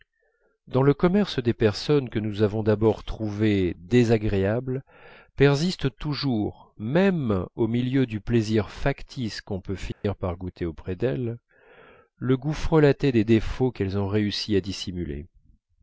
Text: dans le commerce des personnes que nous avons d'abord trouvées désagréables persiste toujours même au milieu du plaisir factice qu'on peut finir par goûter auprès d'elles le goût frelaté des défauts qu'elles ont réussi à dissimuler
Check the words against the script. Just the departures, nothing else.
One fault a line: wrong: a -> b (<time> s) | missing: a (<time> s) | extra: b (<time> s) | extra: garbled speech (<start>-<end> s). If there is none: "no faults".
no faults